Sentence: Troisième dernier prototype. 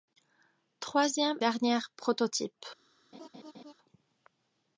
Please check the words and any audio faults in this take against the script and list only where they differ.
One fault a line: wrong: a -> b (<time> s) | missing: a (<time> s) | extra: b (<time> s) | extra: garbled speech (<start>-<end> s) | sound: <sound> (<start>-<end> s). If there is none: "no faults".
sound: laugh (3.1-3.7 s)